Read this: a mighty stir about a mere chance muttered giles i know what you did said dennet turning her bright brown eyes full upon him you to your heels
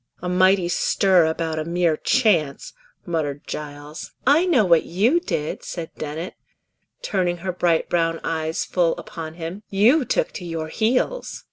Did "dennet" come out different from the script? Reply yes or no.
no